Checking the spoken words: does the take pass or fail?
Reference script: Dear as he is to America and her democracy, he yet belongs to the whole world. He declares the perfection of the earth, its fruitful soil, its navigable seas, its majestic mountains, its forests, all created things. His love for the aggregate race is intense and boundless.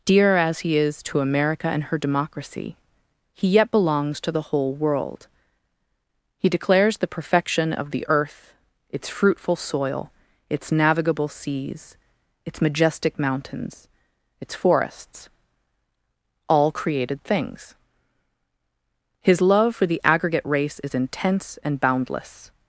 pass